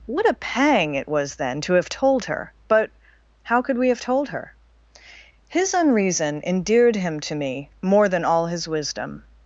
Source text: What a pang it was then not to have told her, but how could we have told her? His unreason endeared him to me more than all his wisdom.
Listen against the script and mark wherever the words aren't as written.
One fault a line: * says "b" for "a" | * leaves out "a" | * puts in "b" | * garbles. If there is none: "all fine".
* leaves out "not"